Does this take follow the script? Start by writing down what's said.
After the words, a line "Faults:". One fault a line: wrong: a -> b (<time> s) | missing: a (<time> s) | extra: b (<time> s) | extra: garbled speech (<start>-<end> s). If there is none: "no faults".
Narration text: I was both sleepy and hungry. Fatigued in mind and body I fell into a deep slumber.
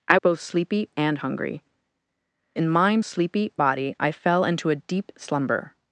I both sleepy and hungry. In mind sleepy body I fell into a deep slumber.
Faults:
missing: was (0.2 s)
missing: Fatigued (1.6 s)
wrong: and -> sleepy (3.0 s)